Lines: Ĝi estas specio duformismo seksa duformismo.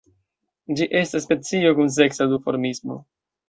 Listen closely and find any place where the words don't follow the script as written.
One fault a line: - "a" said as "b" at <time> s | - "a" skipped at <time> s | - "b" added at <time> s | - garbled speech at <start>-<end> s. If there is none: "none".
- "duformismo" said as "kun" at 1.8 s